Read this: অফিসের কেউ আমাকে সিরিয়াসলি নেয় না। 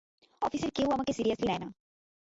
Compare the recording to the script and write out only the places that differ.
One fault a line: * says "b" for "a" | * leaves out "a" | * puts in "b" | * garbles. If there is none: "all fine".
all fine